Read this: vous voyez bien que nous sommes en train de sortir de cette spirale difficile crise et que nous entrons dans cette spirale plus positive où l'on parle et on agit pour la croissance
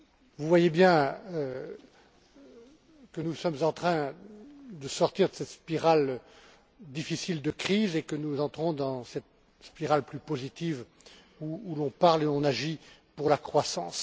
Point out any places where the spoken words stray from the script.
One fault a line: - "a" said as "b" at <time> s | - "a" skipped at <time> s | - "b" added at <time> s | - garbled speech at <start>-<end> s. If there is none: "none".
- "de" added at 7.4 s